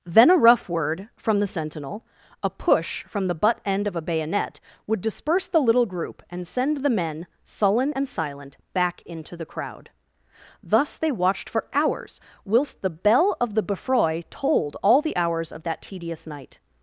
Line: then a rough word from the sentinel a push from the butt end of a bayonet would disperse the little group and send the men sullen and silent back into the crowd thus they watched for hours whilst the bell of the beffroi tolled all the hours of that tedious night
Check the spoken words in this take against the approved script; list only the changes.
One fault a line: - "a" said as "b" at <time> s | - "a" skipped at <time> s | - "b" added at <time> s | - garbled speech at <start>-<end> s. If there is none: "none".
none